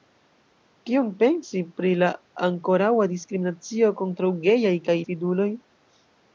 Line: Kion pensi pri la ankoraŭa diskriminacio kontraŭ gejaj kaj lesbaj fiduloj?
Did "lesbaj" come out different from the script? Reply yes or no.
yes